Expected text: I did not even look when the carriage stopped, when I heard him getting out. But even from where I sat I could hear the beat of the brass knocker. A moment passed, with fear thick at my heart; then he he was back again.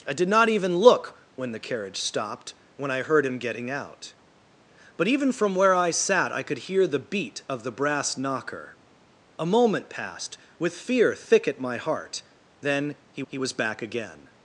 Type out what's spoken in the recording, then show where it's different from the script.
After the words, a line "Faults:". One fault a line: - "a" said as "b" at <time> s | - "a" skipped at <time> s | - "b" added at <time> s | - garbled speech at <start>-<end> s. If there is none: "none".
I did not even look when the carriage stopped, when I heard him getting out. But even from where I sat I could hear the beat of the brass knocker. A moment passed, with fear thick at my heart; then he he was back again.
Faults:
none